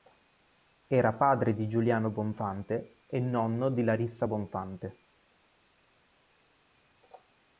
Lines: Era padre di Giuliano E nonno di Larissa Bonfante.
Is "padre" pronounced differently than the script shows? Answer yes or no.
no